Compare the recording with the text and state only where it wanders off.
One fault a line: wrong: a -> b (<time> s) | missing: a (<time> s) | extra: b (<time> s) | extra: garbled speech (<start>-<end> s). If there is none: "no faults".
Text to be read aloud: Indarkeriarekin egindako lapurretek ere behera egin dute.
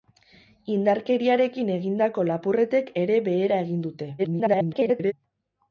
extra: garbled speech (4.2-5.1 s)